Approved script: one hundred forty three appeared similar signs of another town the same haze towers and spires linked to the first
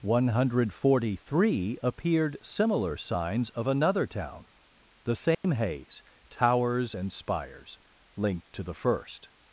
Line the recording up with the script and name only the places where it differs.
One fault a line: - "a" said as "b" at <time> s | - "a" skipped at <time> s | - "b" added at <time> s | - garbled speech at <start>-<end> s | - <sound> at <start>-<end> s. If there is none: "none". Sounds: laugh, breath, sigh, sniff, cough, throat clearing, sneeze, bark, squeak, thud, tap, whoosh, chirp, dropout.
- dropout at 5.3-5.4 s